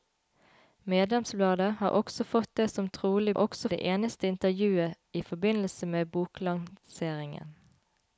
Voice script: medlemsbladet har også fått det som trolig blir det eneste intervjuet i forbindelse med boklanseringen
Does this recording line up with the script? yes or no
no